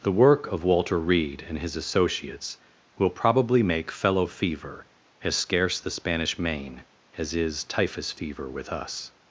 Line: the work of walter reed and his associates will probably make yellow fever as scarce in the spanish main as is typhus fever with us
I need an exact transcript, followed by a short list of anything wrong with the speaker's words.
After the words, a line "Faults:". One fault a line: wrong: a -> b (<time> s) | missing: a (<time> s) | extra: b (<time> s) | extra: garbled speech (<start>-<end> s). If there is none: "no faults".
the work of walter reed and his associates will probably make fellow fever as scarce the spanish main as is typhus fever with us
Faults:
wrong: yellow -> fellow (3.9 s)
missing: in (5.8 s)